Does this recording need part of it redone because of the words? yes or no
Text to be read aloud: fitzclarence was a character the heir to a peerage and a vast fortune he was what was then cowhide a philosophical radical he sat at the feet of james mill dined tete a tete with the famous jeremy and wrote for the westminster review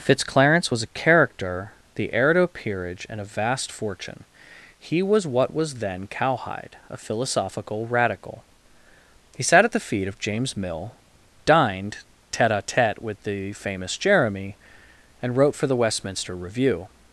no